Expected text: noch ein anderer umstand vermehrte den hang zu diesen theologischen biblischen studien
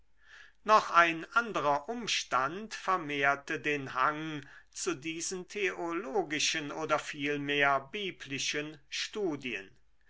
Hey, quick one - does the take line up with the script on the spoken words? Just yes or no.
no